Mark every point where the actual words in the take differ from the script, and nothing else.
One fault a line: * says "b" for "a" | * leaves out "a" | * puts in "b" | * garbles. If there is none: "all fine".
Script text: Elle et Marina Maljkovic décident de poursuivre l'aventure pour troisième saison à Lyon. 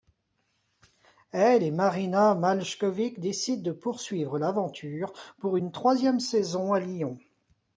* puts in "une"